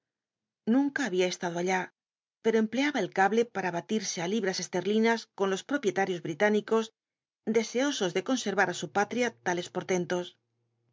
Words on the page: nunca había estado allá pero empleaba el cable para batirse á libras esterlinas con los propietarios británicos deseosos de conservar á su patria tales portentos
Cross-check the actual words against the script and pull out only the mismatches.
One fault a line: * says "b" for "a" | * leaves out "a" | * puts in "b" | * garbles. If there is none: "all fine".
all fine